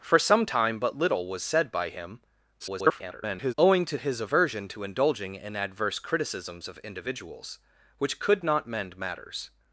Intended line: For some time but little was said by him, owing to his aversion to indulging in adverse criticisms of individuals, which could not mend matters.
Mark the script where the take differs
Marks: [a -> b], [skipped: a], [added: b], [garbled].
For some time but little was said by him, [garbled] owing to his aversion to indulging in adverse criticisms of individuals, which could not mend matters.